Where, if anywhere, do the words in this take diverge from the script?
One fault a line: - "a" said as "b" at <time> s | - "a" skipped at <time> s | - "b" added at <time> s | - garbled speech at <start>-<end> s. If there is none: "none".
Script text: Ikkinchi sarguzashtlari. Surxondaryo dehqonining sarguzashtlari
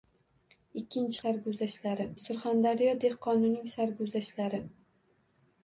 none